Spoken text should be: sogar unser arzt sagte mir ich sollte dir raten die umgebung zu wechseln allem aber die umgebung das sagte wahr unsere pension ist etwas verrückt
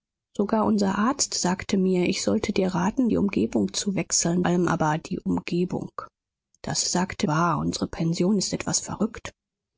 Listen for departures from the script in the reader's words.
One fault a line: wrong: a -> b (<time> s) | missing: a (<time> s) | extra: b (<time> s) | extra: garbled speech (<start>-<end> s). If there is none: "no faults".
no faults